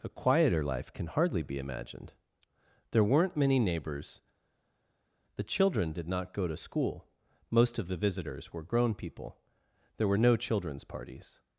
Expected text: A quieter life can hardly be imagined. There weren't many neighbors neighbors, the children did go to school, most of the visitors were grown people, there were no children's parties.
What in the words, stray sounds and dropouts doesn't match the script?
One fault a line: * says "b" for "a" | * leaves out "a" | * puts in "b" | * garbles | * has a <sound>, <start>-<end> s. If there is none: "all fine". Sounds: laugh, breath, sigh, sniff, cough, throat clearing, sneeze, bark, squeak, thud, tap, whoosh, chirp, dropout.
* leaves out "neighbors"
* puts in "not"